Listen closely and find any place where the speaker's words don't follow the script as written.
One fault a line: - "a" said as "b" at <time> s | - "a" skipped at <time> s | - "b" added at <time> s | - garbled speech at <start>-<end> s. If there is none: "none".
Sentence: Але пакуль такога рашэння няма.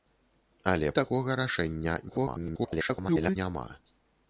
- "пакуль" skipped at 0.9 s
- garbled speech at 2.1-3.4 s